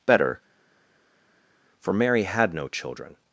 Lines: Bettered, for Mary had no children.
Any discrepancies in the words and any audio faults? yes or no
yes